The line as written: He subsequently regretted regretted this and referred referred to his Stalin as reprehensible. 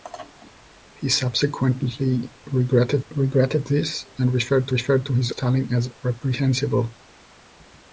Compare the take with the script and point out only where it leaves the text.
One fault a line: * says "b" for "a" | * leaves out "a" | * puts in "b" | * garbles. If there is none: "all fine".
all fine